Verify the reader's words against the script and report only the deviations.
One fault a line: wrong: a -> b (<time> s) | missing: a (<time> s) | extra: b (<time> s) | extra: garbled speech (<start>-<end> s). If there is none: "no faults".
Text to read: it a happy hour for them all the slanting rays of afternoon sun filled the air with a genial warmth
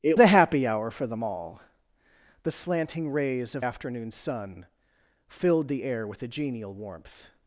no faults